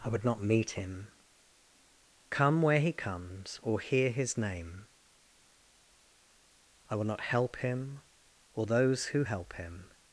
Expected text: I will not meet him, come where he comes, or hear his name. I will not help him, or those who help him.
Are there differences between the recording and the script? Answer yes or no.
yes